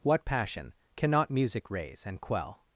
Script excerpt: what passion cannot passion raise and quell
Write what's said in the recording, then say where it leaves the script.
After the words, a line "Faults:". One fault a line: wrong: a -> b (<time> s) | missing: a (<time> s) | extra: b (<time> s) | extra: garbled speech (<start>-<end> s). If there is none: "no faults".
what passion cannot music raise and quell
Faults:
wrong: passion -> music (1.3 s)